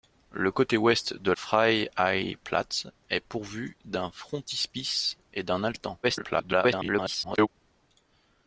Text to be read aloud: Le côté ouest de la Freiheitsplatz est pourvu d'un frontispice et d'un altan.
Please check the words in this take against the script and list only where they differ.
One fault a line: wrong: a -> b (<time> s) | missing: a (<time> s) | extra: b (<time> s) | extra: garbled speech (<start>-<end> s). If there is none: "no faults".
missing: la (1.3 s)
extra: garbled speech (6.0-7.5 s)